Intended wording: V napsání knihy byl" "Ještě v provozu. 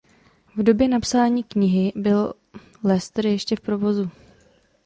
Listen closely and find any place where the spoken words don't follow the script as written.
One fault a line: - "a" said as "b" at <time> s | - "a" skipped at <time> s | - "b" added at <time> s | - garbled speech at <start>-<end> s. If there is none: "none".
- "době" added at 0.6 s
- "Leicester" added at 2.8 s